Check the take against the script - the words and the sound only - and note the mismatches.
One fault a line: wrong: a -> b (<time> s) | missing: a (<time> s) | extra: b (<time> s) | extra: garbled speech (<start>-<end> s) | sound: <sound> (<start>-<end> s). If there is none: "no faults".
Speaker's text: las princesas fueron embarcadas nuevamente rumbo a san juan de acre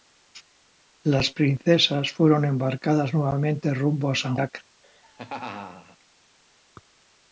missing: juan de (4.3 s)
sound: laugh (4.8-6.0 s)